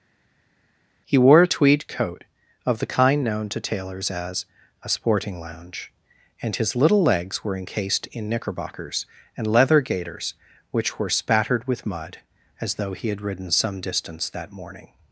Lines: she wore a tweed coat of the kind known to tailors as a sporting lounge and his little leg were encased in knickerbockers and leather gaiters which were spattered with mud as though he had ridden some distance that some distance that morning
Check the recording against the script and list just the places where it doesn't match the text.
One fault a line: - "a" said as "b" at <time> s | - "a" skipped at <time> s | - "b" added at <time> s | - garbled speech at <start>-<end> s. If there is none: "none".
- "she" said as "he" at 1.0 s
- "leg" said as "legs" at 7.0 s
- "some distance that" skipped at 14.5 s